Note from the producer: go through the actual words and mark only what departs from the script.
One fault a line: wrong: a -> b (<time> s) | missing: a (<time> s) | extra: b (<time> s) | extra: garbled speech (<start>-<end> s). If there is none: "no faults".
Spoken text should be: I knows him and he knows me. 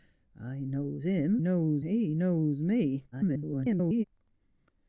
wrong: and -> knows (1.4 s)
extra: garbled speech (3.1-4.0 s)